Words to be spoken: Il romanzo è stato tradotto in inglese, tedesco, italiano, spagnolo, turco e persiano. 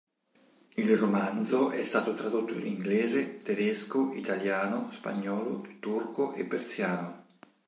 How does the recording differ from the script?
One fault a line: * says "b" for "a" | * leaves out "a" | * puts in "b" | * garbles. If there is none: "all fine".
all fine